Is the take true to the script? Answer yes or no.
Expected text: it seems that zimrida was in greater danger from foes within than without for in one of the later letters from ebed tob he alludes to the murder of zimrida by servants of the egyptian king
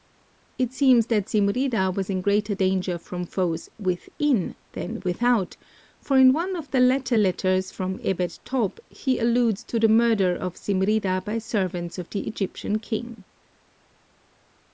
yes